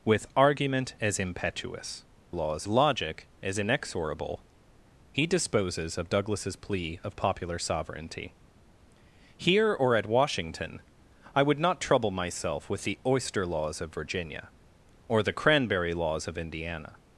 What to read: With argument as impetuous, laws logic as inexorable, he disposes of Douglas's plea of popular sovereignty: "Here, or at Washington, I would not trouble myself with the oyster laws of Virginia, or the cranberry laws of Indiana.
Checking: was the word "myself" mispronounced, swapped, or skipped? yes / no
no